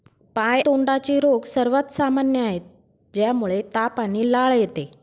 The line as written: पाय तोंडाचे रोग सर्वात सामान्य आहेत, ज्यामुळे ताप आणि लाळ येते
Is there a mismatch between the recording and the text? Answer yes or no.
no